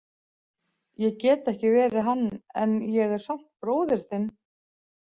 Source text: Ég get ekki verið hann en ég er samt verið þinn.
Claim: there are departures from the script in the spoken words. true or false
true